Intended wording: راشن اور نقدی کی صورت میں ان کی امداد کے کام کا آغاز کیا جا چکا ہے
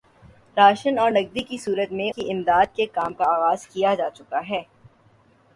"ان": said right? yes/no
no